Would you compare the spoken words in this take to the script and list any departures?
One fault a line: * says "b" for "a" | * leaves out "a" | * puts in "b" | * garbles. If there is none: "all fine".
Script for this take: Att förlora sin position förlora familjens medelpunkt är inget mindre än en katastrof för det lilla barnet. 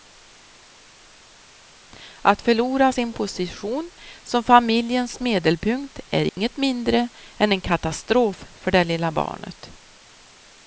* says "som" for "förlora"